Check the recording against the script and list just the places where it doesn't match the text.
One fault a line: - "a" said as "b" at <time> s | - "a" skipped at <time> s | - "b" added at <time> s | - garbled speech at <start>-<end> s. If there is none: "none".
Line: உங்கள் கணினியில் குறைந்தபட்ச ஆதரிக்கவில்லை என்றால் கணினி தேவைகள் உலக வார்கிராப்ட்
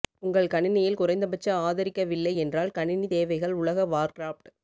none